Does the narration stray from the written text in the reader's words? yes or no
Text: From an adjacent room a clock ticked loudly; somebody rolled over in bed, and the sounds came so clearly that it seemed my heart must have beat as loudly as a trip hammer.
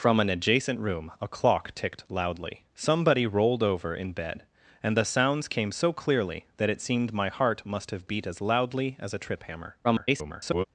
yes